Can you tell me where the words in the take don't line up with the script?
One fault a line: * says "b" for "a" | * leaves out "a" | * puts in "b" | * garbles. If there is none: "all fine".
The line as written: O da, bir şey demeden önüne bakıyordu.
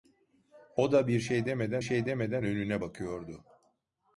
* puts in "şey demeden"